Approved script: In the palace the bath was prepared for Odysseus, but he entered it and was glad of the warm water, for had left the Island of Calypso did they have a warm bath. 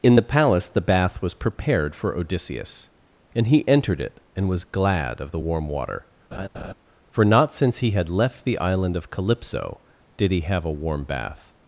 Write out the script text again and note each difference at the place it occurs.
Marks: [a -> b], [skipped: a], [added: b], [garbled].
In the palace the bath was prepared for Odysseus, [but -> and] he entered it and was glad of the warm water, for [added: not since he] had left the Island of Calypso did [they -> he] have a warm bath.